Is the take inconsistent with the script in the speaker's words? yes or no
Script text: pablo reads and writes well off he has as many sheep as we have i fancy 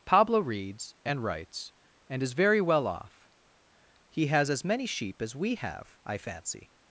yes